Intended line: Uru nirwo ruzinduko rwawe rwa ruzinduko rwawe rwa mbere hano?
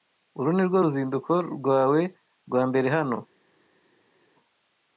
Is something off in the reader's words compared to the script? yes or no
yes